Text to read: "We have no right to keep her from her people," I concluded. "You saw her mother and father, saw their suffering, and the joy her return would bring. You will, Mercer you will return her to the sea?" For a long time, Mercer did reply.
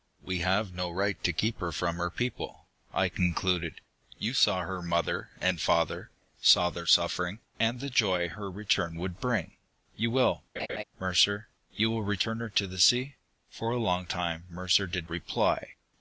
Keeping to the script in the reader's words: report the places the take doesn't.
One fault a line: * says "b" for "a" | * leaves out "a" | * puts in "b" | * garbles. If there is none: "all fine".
all fine